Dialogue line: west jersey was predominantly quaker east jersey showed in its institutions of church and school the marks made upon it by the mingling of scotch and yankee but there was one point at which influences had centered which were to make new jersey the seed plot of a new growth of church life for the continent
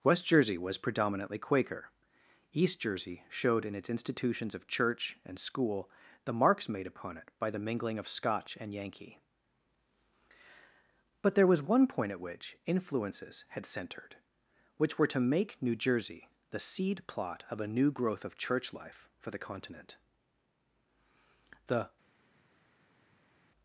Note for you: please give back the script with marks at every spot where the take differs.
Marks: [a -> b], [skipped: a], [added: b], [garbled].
west jersey was predominantly quaker east jersey showed in its institutions of church and school the marks made upon it by the mingling of scotch and yankee but there was one point at which influences had centered which were to make new jersey the seed plot of a new growth of church life for the continent [added: the]